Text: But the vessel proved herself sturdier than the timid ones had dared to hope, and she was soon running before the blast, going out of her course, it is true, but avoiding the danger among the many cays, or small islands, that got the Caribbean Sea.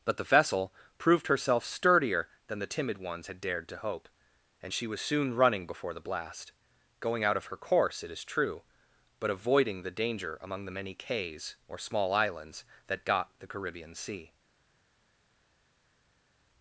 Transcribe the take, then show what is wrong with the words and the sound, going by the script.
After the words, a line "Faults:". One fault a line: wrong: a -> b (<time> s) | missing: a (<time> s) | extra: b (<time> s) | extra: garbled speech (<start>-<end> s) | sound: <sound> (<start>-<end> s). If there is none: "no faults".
But the vessel proved herself sturdier than the timid ones had dared to hope, and she was soon running before the blast, going out of her course, it is true, but avoiding the danger among the many cays, or small islands, that got the Caribbean Sea.
Faults:
no faults